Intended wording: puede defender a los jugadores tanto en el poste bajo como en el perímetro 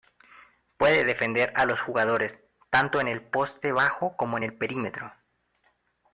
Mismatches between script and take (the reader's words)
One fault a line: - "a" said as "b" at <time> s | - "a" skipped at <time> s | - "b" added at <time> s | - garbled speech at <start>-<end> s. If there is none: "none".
none